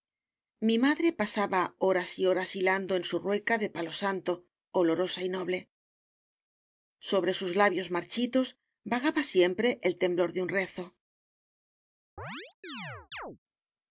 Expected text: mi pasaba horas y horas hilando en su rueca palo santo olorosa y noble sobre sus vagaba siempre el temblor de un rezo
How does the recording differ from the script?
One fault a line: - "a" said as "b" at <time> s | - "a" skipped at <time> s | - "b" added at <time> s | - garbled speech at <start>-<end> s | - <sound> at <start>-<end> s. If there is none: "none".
- "madre" added at 0.8 s
- "de" added at 3.6 s
- "labios marchitos" added at 7.5 s
- chirp at 12.2-13.4 s